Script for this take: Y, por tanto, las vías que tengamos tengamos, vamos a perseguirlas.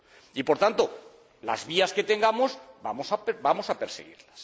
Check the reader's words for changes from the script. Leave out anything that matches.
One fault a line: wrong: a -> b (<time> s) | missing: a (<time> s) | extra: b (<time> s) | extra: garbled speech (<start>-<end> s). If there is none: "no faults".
missing: tengamos (2.6 s)